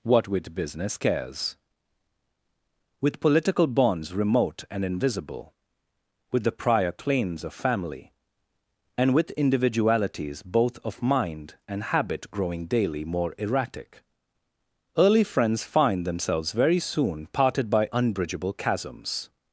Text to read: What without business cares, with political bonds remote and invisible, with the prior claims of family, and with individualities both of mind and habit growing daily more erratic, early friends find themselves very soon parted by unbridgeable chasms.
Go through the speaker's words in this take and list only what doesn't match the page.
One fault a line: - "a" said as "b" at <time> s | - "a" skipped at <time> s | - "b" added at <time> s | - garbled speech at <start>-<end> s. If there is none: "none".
- "without" said as "with" at 0.3 s